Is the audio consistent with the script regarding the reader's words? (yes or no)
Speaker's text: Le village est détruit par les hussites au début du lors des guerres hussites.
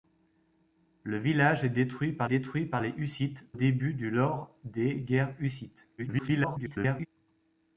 no